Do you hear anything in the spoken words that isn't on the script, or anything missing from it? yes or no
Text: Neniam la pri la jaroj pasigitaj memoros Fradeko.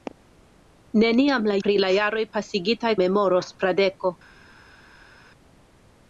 no